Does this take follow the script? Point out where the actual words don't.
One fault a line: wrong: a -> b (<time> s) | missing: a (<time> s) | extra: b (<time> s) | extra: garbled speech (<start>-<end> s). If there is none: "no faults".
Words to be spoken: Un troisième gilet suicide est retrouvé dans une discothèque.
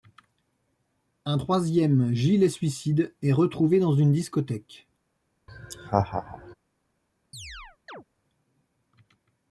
no faults